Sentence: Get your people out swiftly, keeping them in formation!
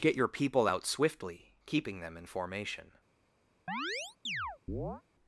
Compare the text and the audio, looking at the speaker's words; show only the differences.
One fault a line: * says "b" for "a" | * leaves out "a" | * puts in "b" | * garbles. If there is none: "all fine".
all fine